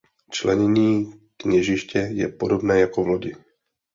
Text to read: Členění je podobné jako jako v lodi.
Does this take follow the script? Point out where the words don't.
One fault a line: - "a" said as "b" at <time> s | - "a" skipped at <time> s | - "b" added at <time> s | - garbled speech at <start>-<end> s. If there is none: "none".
- "kněžiště" added at 1.4 s
- "jako" skipped at 3.0 s